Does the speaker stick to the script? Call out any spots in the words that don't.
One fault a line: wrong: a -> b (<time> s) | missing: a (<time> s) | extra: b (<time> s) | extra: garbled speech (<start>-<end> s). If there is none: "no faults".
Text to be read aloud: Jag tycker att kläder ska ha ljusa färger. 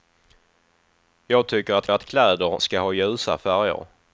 extra: att (1.9 s)